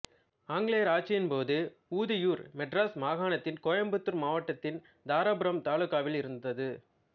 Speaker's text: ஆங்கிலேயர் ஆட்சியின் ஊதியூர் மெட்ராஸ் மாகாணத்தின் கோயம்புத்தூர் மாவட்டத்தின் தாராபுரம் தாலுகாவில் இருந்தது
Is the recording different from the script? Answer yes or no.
yes